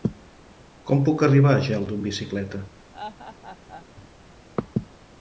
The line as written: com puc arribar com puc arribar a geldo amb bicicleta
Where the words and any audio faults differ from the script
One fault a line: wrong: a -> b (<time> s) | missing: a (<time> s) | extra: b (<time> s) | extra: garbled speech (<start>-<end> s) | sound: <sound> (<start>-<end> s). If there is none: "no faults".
missing: com puc arribar (1.5 s)
sound: laugh (2.9-3.9 s)